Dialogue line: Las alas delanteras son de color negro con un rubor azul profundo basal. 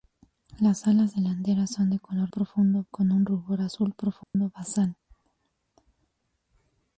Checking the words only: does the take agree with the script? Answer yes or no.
no